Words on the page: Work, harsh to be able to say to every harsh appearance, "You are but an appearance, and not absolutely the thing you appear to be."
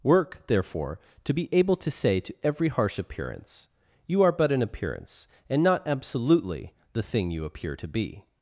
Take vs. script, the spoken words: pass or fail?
fail